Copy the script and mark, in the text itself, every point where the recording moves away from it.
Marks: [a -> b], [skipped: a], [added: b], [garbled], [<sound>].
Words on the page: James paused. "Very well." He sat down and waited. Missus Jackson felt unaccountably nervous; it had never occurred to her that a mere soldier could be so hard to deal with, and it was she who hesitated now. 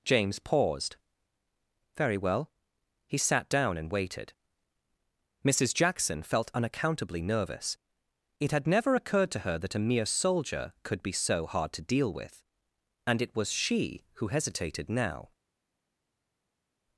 James paused. "Very well." He sat down and waited. Missus Jackson felt unaccountably nervous; it had never occurred to her that a mere soldier could be so hard to deal with, and it was she who hesitated now.